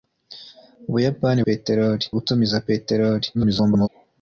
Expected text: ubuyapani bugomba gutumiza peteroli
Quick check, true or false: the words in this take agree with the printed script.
false